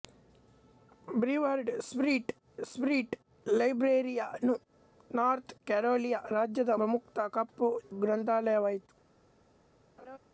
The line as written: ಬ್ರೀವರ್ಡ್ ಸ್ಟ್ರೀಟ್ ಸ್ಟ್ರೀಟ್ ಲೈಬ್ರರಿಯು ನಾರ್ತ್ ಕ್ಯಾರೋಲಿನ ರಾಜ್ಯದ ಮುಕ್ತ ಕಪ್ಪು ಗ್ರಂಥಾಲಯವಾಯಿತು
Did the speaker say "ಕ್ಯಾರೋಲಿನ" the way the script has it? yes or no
yes